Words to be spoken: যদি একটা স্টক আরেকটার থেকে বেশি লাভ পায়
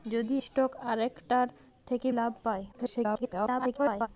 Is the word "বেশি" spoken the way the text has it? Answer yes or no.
no